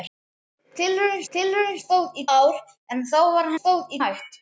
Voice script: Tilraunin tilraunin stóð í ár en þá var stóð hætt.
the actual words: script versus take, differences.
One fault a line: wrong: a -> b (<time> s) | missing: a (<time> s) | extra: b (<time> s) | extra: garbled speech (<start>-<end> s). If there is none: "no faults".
no faults